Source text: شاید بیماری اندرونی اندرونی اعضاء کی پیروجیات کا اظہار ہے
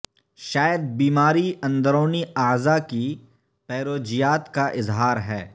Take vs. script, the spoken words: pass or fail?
fail